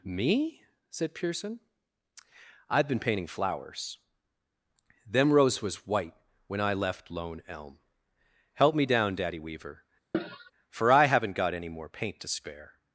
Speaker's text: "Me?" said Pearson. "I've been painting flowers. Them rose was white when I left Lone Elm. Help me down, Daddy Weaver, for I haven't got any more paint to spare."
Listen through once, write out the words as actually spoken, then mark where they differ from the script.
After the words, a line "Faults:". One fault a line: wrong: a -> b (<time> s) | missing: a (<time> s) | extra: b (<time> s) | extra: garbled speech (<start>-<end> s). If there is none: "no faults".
"Me?" said Pearson. "I've been painting flowers. Them rose was white when I left Lone Elm. Help me down, Daddy Weaver, for I haven't got any more paint to spare."
Faults:
no faults